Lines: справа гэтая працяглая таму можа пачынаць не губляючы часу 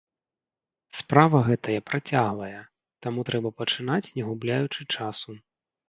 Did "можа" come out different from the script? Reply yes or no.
yes